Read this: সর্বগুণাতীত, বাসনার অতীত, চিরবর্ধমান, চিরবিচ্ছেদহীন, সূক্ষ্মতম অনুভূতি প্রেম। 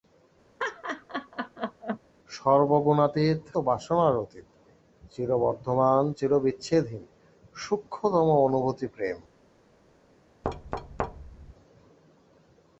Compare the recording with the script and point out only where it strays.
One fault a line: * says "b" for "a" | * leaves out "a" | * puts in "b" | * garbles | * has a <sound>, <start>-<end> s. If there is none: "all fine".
* has a laugh, 0.6-2.0 s
* has a thud, 10.4-11.5 s